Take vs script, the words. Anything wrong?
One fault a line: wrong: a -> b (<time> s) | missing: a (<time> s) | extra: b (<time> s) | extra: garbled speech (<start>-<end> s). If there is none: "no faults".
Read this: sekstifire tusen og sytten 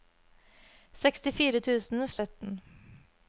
no faults